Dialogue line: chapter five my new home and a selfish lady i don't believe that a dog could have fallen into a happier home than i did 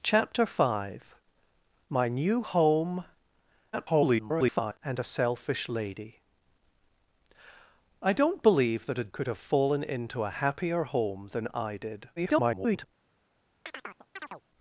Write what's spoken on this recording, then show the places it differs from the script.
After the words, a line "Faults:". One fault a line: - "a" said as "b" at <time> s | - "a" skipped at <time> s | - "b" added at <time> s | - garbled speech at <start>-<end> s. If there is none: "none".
chapter five my new home [garbled] and a selfish lady i don't believe that a could have fallen into a happier home than i did [garbled]
Faults:
- garbled speech at 3.7-4.8 s
- "dog" skipped at 9.1 s
- garbled speech at 12.2-12.9 s